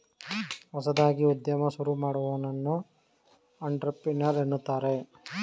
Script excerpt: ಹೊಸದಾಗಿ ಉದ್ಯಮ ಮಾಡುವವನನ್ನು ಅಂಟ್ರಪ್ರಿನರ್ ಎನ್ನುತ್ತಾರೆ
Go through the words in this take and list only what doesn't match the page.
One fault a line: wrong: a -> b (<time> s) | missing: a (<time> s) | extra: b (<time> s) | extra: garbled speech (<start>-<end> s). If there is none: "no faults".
extra: ಶುರು (1.7 s)